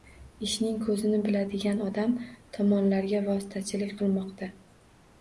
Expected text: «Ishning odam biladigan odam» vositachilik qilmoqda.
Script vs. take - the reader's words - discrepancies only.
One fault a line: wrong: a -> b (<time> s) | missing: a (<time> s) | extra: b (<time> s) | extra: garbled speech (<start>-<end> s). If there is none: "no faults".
wrong: odam -> ko‘zini (0.8 s)
extra: tomonlarga (2.6 s)